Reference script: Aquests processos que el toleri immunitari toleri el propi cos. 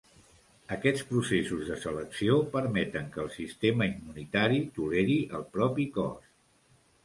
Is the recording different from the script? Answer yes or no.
yes